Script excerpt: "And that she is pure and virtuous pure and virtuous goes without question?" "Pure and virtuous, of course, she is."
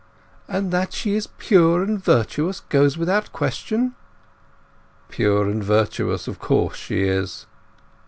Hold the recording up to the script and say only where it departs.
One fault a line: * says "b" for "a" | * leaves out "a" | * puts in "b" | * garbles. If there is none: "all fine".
* leaves out "pure and virtuous"